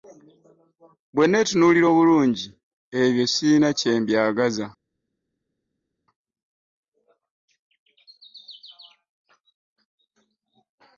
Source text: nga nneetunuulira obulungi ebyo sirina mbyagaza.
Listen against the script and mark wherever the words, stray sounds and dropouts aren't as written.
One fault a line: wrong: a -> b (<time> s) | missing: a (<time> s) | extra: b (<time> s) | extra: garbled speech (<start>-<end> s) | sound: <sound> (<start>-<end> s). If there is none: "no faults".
wrong: nga -> bwe (1.1 s)
extra: kye (3.8 s)